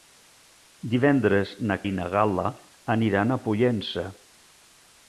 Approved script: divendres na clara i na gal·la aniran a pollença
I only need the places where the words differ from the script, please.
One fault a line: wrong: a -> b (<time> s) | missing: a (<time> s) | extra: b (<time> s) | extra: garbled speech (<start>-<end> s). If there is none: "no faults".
missing: clara (1.8 s)